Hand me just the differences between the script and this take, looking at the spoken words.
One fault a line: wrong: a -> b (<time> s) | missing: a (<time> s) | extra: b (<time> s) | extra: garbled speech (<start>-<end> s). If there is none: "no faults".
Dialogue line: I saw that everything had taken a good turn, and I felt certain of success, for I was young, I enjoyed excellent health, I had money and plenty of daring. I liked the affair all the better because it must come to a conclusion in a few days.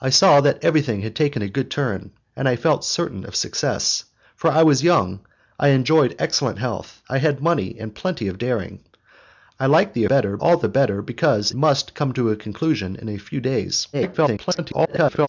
wrong: affair -> better (10.0 s)
missing: it (11.5 s)
extra: garbled speech (13.9-15.3 s)